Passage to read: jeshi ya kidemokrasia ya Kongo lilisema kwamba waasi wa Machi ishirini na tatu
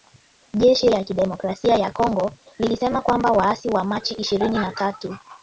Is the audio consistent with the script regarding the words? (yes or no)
yes